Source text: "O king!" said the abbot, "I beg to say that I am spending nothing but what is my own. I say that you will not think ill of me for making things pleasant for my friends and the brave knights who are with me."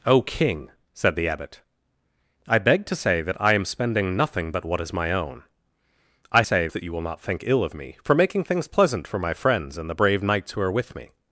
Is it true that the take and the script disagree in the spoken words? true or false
false